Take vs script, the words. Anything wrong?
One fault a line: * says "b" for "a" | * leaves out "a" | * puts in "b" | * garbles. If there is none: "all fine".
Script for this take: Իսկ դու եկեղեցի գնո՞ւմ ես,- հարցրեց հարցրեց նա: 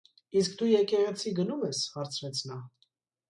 * leaves out "հարցրեց"